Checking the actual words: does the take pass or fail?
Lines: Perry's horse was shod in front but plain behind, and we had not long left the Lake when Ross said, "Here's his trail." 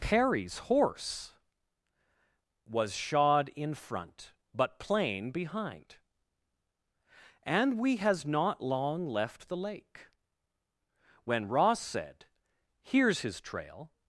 fail